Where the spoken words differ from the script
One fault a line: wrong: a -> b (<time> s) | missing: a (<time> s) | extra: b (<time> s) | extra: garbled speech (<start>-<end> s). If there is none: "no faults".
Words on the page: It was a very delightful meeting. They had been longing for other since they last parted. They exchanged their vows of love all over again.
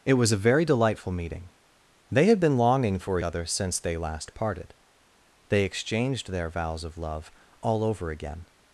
no faults